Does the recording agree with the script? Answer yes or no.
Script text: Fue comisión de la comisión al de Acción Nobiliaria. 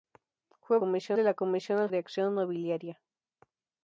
yes